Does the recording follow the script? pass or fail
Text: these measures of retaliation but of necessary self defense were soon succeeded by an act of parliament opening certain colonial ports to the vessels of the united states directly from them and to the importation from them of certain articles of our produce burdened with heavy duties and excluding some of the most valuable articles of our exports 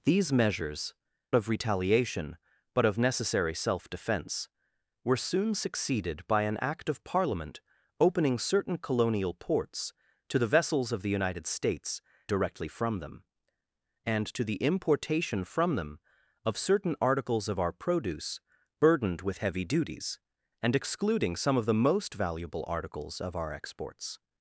pass